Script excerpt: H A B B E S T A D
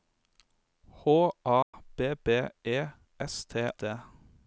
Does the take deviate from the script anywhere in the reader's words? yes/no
yes